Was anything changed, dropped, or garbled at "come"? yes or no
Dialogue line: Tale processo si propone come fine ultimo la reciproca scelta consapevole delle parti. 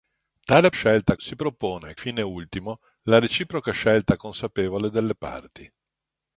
yes